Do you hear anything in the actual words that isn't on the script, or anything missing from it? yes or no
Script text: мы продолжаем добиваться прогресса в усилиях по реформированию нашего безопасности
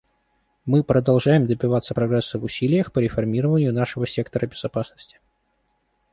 yes